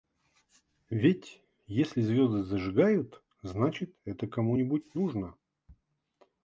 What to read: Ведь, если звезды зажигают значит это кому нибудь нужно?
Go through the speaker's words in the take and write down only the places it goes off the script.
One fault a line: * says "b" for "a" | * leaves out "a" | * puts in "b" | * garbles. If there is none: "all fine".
all fine